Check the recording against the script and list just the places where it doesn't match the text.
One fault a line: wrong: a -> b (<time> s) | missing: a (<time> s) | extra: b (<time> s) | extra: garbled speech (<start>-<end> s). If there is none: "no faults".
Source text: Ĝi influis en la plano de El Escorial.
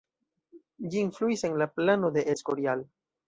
missing: El (2.3 s)